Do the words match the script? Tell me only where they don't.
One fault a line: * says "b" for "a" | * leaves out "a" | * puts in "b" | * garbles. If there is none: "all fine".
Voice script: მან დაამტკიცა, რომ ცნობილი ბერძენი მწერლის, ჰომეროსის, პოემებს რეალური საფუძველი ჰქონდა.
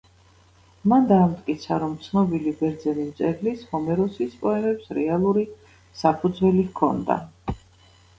all fine